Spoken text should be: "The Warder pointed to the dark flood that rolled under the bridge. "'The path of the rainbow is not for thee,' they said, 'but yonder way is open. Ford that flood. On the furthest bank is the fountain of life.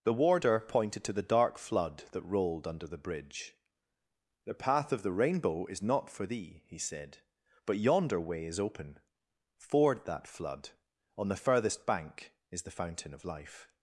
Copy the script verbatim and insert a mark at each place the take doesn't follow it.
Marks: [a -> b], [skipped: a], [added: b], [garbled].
"The Warder pointed to the dark flood that rolled under the bridge. "'The path of the rainbow is not for thee,' [they -> he] said, 'but yonder way is open. Ford that flood. On the furthest bank is the fountain of life.